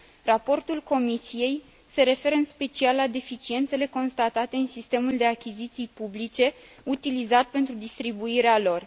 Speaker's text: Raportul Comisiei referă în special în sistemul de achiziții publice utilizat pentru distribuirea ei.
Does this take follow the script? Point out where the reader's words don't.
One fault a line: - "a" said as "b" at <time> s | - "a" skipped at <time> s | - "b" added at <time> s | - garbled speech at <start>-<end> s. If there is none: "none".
- "se" added at 1.9 s
- "la deficiențele constatate" added at 3.0 s
- "ei" said as "lor" at 8.6 s